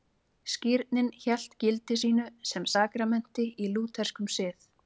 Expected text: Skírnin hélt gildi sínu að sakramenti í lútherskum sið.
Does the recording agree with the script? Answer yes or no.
no